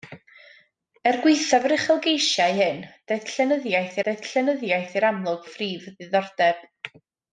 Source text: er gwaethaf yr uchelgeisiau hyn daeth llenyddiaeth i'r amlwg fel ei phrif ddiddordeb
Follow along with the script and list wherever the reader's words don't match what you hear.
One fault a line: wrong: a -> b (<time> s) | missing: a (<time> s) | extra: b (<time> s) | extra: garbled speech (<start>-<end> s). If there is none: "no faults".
extra: daeth llenyddiaeth (4.1 s)
missing: fel (5.5 s)